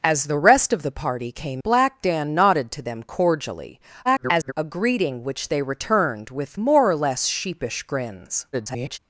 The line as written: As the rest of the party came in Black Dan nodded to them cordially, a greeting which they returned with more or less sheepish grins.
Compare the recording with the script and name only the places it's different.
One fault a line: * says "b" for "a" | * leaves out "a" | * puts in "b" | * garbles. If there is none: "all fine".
* leaves out "in"
* garbles
* garbles